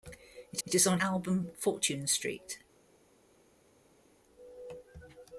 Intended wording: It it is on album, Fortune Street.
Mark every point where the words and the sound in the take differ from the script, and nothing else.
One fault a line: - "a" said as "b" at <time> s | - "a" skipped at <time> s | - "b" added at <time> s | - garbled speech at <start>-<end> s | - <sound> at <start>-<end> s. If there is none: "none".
none